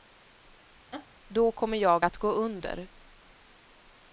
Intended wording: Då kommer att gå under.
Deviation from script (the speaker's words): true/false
true